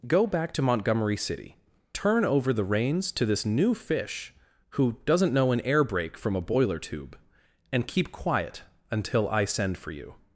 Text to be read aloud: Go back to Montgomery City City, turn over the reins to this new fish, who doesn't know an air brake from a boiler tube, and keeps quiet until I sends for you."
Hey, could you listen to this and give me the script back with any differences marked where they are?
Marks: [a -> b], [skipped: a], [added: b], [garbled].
Go back to Montgomery City [skipped: City,] turn over the reins to this new fish, who doesn't know an air brake from a boiler tube, and [keeps -> keep] quiet until I [sends -> send] for you."